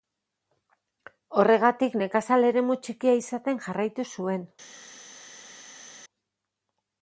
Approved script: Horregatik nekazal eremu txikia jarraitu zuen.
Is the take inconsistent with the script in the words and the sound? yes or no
yes